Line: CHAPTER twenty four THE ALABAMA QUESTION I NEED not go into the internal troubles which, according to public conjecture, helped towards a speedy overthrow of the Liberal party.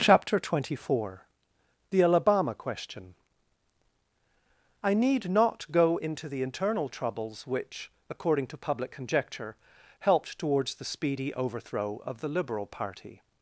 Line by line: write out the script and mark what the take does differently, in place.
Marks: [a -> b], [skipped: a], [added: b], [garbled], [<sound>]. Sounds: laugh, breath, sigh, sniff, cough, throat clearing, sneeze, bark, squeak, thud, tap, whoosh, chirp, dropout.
CHAPTER twenty four THE ALABAMA QUESTION I NEED not go into the internal troubles which, according to public conjecture, helped towards [a -> the] speedy overthrow of the Liberal party.